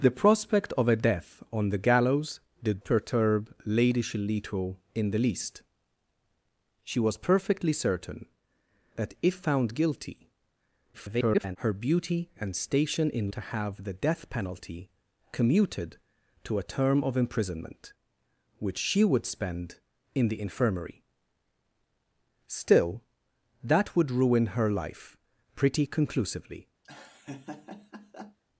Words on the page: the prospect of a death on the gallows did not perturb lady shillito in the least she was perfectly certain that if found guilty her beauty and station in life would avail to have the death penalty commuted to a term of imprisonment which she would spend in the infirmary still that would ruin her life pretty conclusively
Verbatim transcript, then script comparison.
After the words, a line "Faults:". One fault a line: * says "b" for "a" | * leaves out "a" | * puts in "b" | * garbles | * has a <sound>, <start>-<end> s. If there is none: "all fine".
the prospect of a death on the gallows did perturb lady shillito in the least she was perfectly certain that if found guilty [garbled] her beauty and station in to have the death penalty commuted to a term of imprisonment which she would spend in the infirmary still that would ruin her life pretty conclusively
Faults:
* leaves out "not"
* garbles
* leaves out "life would avail"
* has a laugh, 26.8-28.4 s